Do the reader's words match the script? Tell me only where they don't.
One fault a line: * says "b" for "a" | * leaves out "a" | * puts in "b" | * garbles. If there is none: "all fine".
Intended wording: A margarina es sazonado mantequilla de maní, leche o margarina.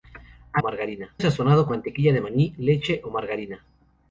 all fine